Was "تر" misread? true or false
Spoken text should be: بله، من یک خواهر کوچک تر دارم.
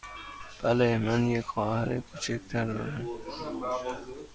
false